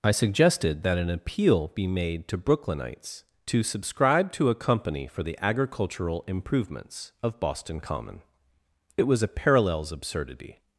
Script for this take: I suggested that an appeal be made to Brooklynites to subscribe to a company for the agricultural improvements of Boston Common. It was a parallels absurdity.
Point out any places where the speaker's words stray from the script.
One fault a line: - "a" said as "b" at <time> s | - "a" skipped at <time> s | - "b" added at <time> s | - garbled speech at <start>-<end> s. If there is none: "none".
none